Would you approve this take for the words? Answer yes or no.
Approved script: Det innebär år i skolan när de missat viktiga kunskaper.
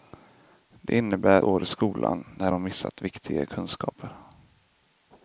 yes